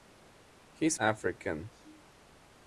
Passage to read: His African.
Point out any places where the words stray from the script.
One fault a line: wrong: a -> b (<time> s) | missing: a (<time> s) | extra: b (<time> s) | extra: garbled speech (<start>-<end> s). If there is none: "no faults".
no faults